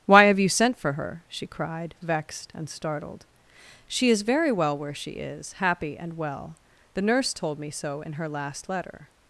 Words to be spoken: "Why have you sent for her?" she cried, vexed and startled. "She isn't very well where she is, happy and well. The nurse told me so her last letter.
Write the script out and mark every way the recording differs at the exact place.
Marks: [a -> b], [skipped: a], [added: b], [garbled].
"Why have you sent for her?" she cried, vexed and startled. "She [isn't -> is] very well where she is, happy and well. The nurse told me so [added: in] her last letter.